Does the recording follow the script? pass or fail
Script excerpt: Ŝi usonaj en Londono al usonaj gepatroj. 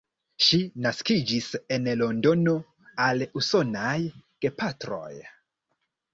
fail